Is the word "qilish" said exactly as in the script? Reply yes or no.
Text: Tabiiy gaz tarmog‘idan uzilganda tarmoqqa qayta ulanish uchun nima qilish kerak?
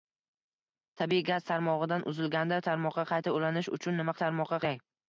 no